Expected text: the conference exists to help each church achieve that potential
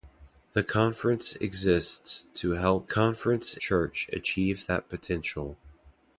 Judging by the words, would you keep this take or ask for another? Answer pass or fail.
fail